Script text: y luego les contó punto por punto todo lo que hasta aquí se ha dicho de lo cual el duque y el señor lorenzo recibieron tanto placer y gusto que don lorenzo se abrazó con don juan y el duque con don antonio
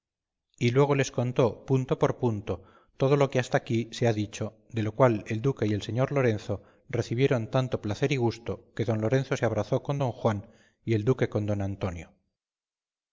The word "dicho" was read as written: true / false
true